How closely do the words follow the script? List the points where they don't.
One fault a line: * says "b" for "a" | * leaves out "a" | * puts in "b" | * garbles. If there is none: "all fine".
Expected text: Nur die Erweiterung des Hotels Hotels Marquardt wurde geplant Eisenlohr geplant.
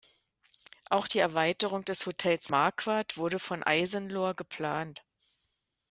* says "Auch" for "Nur"
* leaves out "Hotels"
* says "von" for "geplant"